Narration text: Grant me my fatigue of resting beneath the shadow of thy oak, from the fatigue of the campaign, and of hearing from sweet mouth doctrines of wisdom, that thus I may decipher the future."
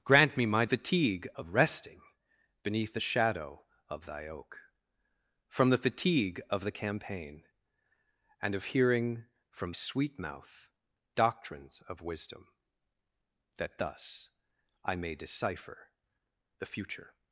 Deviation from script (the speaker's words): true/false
false